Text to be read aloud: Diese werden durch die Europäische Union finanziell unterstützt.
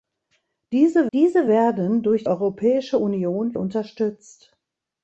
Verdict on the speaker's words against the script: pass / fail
fail